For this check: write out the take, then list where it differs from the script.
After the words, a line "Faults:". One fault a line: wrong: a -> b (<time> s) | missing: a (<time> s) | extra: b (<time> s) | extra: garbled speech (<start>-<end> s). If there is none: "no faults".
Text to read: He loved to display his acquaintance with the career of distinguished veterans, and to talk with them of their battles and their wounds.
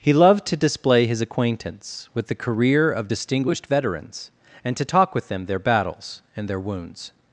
He loved to display his acquaintance with the career of distinguished veterans, and to talk with them their battles and their wounds.
Faults:
missing: of (5.5 s)